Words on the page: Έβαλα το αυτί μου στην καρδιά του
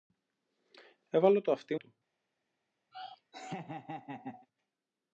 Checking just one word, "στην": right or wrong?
wrong